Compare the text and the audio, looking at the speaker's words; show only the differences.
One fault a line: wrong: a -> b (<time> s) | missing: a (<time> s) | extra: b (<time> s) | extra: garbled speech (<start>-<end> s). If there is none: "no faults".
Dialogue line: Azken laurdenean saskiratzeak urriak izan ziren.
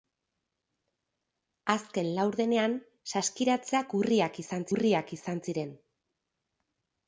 extra: urriak izan (4.7 s)